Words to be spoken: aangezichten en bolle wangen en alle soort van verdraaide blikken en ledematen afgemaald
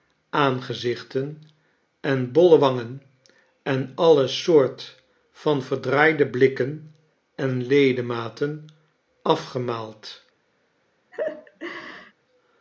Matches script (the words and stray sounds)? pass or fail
fail